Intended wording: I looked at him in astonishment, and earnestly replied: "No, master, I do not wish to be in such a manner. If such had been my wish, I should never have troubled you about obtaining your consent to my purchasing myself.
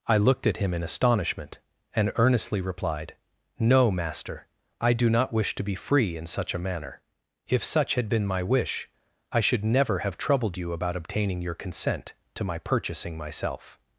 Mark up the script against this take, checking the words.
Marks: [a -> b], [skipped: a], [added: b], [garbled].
I looked at him in astonishment, and earnestly replied: "No, master, I do not wish to be [added: free] in such a manner. If such had been my wish, I should never have troubled you about obtaining your consent to my purchasing myself.